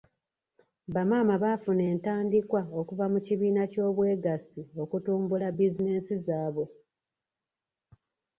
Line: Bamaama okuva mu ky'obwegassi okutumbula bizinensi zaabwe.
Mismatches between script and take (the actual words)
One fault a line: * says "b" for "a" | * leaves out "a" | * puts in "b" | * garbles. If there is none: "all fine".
* puts in "baafuna entandikwa"
* puts in "kibiina"